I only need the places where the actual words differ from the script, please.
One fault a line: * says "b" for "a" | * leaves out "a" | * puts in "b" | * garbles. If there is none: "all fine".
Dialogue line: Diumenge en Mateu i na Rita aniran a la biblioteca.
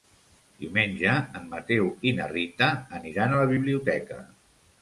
all fine